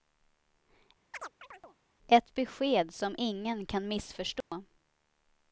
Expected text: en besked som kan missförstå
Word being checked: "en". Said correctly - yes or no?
no